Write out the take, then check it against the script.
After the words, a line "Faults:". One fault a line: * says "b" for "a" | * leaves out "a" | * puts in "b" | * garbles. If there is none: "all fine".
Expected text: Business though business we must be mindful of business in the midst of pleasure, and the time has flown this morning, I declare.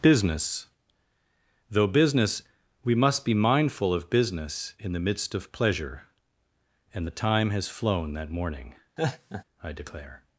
Business though business we must be mindful of business in the midst of pleasure, and the time has flown that morning, I declare.
Faults:
* says "that" for "this"